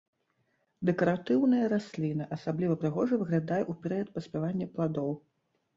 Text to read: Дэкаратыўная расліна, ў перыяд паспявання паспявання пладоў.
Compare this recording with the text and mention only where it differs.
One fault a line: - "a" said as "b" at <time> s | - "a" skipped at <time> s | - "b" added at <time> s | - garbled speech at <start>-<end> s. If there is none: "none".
- "асабліва прыгожа выглядае" added at 2.4 s
- "паспявання" skipped at 4.7 s